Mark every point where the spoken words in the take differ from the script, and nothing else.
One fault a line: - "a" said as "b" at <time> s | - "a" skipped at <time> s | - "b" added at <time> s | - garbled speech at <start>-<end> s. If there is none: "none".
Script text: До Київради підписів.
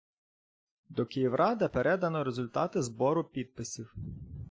- "передано результати збору" added at 1.6 s